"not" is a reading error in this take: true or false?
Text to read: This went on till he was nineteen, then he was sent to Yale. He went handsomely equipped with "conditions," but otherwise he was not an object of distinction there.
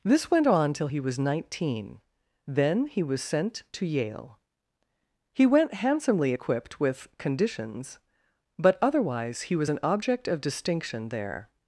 true